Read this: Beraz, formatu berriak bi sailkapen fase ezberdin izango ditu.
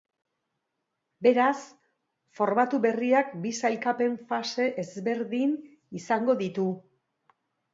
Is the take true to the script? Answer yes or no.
yes